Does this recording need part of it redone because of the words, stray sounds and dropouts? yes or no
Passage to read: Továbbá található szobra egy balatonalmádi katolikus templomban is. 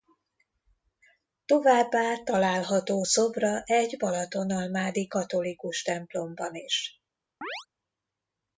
yes